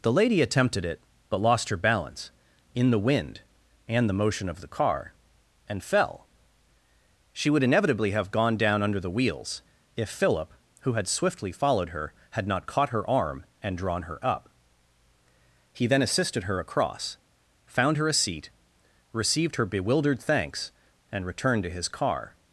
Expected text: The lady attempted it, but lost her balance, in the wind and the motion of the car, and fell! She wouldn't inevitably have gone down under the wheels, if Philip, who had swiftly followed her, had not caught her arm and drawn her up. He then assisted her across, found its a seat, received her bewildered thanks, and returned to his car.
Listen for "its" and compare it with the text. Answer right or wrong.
wrong